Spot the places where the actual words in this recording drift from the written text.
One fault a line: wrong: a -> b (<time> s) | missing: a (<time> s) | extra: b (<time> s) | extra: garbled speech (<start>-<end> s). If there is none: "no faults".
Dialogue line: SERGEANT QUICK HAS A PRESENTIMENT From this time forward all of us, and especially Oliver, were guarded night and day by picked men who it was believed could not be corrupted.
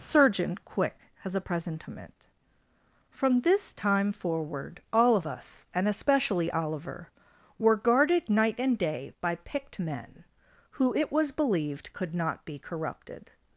wrong: SERGEANT -> Surgeon (0.0 s)